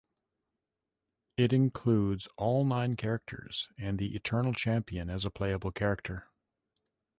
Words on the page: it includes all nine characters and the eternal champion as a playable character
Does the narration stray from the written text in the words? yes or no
no